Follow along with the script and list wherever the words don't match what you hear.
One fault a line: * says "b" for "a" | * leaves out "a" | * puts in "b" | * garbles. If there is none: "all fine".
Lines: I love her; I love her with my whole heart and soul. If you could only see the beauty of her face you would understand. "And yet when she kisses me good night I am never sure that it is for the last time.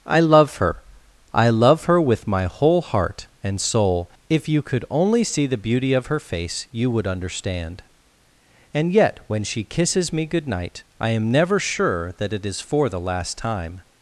all fine